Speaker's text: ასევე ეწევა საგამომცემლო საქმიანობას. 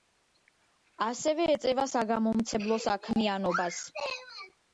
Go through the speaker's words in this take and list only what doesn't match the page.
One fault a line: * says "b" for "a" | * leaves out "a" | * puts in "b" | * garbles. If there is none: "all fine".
all fine